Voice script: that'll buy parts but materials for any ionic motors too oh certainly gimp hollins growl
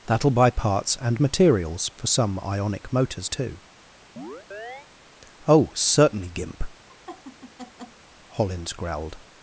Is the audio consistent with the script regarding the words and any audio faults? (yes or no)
no